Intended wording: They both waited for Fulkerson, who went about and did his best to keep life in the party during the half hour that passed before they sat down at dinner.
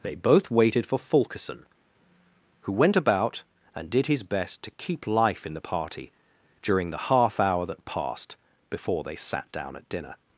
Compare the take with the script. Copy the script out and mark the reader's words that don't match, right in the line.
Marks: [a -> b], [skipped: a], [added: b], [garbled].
They both waited for Fulkerson, who went about and did his best to keep life in the party during the half hour that passed before they sat down at dinner.